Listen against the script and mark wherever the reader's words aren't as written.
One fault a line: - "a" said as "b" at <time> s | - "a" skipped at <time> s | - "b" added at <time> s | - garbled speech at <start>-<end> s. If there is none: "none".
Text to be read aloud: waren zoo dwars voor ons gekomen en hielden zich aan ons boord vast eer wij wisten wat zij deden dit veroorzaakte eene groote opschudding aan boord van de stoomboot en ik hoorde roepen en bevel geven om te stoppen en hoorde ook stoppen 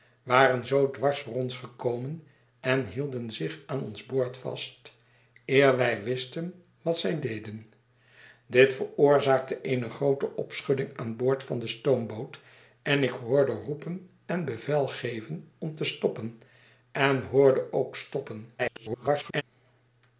- garbled speech at 18.6-19.4 s